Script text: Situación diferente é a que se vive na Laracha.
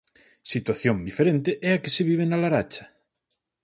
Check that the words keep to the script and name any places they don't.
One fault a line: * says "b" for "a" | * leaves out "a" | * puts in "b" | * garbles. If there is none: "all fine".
all fine